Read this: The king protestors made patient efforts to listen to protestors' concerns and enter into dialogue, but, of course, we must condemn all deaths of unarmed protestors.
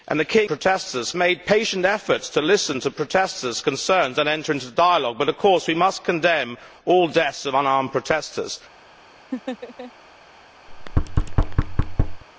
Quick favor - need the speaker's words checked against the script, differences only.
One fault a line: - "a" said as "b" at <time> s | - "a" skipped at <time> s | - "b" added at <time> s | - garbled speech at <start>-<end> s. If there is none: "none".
none